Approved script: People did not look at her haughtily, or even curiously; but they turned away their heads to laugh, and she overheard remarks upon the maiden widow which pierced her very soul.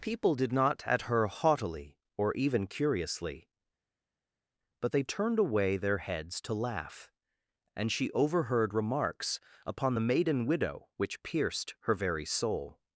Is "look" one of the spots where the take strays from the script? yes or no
yes